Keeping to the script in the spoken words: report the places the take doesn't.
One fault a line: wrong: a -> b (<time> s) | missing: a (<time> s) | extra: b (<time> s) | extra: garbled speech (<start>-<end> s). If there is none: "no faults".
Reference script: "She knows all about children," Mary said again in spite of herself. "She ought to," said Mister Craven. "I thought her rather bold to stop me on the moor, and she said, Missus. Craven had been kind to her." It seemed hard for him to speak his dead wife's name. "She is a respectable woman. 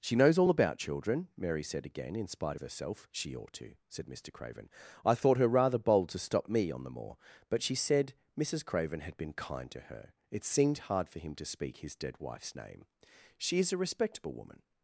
wrong: and -> but (7.5 s)